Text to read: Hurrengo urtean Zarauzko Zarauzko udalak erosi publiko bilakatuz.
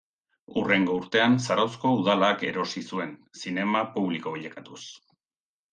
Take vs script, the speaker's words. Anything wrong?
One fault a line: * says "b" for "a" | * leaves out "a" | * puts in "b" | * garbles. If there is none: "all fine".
* leaves out "Zarauzko"
* puts in "zuen zinema"